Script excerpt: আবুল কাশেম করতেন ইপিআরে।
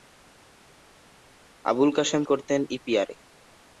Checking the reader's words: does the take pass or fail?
pass